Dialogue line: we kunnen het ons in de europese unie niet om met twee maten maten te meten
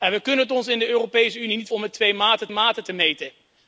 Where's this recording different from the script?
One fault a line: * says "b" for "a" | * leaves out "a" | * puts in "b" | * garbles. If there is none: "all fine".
all fine